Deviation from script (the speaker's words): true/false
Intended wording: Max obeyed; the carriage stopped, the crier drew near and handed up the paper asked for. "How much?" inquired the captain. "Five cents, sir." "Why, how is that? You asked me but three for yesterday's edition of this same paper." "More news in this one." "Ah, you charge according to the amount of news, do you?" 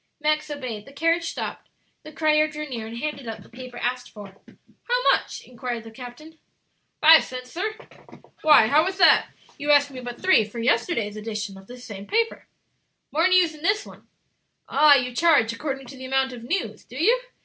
false